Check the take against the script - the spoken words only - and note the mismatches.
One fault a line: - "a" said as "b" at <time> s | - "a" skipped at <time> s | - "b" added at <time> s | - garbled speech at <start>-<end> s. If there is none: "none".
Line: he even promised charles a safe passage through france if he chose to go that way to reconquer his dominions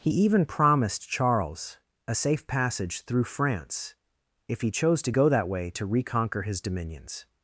none